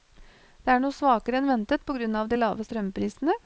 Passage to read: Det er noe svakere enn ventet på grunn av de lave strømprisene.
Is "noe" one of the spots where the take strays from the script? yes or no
no